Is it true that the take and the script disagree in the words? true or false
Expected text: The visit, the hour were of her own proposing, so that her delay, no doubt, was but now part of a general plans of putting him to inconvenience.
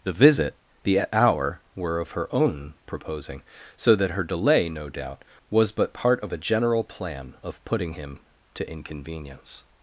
true